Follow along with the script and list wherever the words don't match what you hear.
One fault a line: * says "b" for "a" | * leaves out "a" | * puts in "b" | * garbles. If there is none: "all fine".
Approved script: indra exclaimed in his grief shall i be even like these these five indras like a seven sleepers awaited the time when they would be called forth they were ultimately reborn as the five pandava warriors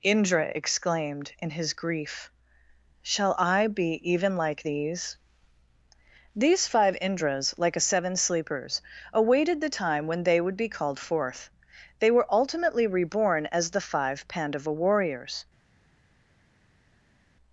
all fine